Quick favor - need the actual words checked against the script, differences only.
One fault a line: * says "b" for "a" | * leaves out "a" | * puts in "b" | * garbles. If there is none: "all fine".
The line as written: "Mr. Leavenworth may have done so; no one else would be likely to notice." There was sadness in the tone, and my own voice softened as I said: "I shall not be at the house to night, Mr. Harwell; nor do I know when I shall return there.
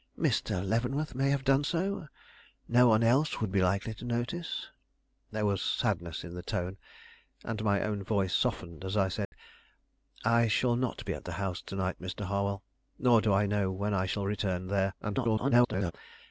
* garbles